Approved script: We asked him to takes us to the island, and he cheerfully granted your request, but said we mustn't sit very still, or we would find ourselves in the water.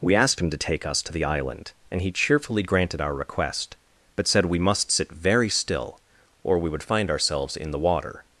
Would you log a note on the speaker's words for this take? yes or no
yes